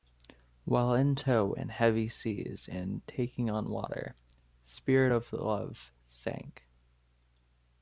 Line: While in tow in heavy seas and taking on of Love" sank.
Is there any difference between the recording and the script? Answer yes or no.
yes